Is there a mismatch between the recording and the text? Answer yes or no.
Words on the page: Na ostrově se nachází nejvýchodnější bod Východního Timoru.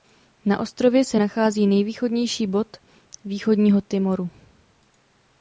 no